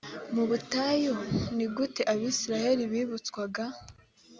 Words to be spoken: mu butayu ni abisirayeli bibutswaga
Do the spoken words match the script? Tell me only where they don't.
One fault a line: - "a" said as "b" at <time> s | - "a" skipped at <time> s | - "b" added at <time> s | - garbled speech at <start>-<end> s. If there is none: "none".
- "gute" added at 1.8 s